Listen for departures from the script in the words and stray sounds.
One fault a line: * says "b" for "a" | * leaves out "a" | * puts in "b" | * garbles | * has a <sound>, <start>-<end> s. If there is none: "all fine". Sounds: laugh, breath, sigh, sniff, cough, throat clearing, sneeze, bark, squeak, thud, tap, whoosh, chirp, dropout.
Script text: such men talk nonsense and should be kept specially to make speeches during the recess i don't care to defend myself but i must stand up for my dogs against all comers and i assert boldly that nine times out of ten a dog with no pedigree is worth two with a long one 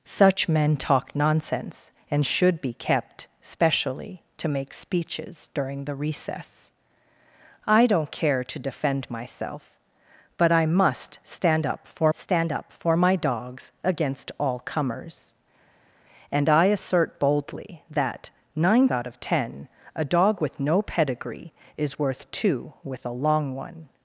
* puts in "stand up for"
* leaves out "times"